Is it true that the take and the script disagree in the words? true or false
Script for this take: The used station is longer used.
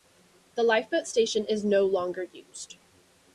true